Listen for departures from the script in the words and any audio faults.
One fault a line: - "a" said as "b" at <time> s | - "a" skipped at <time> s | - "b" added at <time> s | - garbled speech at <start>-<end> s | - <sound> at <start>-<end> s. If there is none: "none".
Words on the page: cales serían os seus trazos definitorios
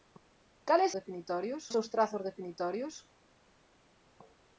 - "serían" said as "definitorios" at 1.0 s